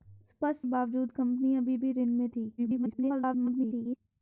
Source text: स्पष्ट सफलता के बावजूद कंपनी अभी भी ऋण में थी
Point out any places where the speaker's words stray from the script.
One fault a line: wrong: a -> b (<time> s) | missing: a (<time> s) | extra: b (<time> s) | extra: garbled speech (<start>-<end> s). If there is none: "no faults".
missing: सफलता के (0.7 s)
extra: garbled speech (2.6-4.0 s)